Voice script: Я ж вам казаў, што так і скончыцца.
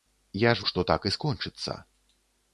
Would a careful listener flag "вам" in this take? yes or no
yes